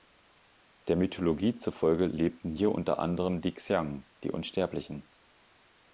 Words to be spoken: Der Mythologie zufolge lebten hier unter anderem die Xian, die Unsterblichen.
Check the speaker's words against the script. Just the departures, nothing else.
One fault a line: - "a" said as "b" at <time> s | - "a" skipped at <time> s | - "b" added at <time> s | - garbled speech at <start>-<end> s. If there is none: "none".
none